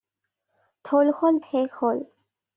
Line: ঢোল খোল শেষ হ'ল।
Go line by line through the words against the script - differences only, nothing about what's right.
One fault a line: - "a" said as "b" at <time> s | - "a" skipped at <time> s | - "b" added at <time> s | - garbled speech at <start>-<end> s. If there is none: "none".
none